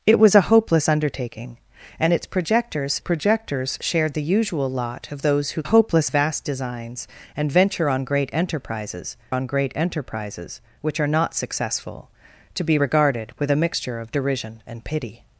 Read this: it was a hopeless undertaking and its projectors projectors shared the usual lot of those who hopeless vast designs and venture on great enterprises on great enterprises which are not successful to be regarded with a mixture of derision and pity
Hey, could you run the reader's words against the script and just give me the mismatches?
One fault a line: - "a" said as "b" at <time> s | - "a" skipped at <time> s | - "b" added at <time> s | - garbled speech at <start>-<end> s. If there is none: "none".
none